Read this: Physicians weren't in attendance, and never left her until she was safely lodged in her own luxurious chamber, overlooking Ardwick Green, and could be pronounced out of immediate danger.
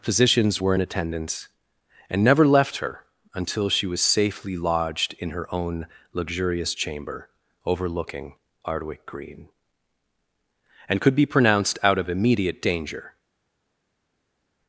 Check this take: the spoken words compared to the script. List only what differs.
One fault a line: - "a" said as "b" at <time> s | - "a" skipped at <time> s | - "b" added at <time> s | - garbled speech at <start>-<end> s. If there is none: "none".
- "weren't" said as "were" at 0.6 s